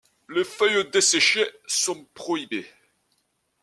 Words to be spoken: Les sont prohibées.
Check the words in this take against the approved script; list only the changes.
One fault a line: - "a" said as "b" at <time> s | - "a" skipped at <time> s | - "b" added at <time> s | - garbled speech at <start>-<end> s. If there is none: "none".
- "feuilles desséchées" added at 0.4 s